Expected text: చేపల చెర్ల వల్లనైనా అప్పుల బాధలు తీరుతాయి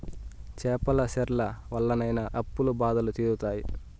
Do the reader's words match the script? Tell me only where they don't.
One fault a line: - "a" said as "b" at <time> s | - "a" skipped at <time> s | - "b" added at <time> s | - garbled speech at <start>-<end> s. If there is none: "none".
none